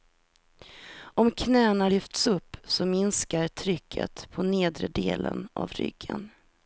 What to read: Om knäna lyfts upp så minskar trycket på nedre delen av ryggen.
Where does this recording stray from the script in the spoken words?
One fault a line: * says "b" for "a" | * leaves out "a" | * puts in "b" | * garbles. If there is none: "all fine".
all fine